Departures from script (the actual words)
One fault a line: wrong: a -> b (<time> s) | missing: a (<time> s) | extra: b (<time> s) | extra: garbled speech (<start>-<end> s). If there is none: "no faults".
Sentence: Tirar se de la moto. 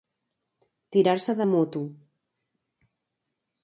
missing: la (1.4 s)